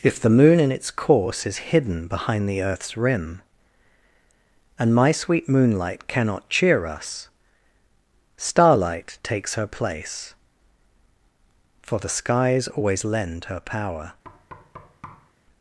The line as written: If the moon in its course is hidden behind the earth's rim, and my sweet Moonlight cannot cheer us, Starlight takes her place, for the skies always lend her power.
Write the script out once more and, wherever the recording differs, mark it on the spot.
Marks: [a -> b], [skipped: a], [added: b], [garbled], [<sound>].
If the moon in its course is hidden behind the earth's rim, and my sweet Moonlight cannot cheer us, Starlight takes her place, for the skies always lend her power. [thud]